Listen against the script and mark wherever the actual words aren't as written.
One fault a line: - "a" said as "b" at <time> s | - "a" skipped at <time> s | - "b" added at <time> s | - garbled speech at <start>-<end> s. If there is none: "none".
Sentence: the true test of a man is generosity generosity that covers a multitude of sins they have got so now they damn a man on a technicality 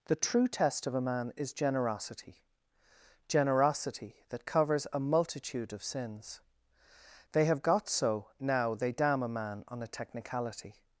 none